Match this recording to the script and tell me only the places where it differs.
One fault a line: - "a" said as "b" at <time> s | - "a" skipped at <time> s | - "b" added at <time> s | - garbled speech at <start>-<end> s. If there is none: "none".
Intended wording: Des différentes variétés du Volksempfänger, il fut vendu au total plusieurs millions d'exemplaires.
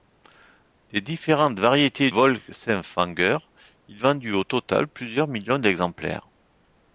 - "du" skipped at 2.1 s
- "fut" skipped at 4.0 s